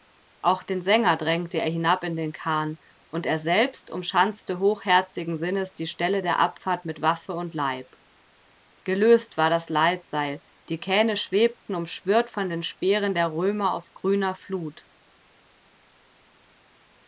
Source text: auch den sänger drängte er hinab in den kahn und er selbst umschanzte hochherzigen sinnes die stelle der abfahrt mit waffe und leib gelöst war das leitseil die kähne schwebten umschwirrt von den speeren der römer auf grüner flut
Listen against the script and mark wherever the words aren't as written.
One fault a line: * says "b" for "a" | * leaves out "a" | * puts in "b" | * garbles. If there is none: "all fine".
all fine